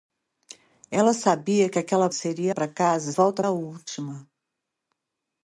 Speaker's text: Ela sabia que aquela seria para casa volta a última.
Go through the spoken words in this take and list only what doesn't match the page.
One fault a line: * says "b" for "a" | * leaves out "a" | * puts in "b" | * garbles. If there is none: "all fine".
all fine